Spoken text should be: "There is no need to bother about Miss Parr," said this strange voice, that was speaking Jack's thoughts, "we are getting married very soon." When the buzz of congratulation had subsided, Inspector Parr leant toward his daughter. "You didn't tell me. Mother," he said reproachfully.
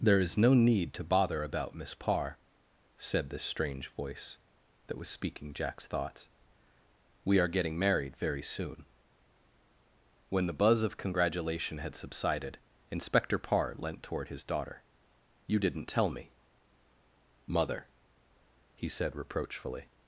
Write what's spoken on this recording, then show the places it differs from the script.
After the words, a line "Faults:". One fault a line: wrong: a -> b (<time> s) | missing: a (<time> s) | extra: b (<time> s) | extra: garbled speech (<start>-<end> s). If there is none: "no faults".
"There is no need to bother about Miss Parr," said this strange voice, that was speaking Jack's thoughts, "we are getting married very soon." When the buzz of congratulation had subsided, Inspector Parr leant toward his daughter. "You didn't tell me. Mother," he said reproachfully.
Faults:
no faults